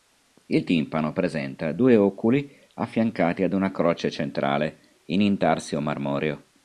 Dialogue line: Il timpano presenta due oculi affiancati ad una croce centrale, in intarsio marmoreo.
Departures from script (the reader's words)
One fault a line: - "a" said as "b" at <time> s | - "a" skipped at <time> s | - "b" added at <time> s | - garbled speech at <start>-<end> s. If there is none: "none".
none